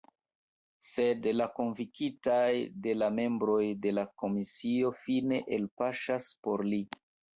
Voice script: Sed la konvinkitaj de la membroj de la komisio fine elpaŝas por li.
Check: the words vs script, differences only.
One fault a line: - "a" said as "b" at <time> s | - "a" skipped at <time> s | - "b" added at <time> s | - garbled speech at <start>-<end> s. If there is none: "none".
none